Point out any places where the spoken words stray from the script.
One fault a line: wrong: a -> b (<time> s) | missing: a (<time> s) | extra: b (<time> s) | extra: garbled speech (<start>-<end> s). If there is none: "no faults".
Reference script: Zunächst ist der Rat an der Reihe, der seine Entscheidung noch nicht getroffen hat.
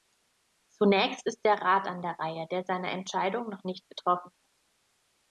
no faults